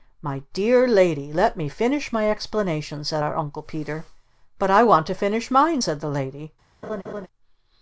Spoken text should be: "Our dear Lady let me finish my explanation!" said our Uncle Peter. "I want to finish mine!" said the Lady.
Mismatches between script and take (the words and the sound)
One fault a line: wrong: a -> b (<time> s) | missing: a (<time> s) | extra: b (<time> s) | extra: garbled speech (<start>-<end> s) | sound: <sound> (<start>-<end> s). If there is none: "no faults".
wrong: Our -> My (0.2 s)
extra: But (4.6 s)
sound: laugh (6.8-7.3 s)